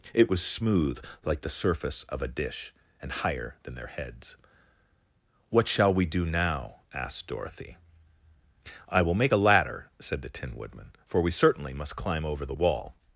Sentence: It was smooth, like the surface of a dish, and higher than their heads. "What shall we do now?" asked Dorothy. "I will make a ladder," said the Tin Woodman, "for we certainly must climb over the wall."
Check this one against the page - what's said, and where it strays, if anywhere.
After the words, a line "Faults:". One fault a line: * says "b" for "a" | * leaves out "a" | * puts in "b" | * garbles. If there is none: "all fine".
It was smooth, like the surface of a dish, and higher than their heads. "What shall we do now?" asked Dorothy. "I will make a ladder," said the Tin Woodman, "for we certainly must climb over the wall."
Faults:
all fine